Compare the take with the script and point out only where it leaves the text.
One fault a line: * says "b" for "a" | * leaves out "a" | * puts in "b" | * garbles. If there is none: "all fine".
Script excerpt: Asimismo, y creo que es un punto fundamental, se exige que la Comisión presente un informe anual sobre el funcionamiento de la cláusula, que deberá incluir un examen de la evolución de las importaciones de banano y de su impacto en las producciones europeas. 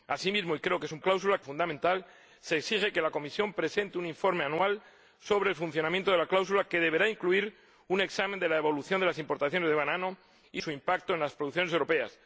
* says "cláusula" for "punto"
* leaves out "de"